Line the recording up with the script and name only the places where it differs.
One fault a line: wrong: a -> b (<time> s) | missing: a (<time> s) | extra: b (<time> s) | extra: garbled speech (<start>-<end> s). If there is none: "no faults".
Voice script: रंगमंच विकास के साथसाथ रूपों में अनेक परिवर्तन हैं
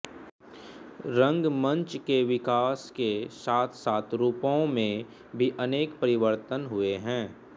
extra: के (2.1 s)
extra: भी (5.3 s)
extra: हुए (6.7 s)